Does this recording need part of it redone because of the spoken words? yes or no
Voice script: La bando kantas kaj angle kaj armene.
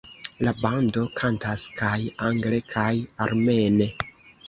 no